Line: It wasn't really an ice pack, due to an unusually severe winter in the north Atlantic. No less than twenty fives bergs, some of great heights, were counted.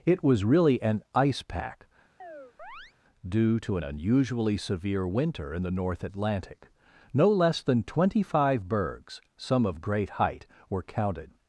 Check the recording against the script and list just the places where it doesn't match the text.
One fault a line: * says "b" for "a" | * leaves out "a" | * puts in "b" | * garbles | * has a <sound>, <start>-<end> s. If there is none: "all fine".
* says "was" for "wasn't"
* has a chirp, 2.2-2.9 s
* says "five" for "fives"
* says "height" for "heights"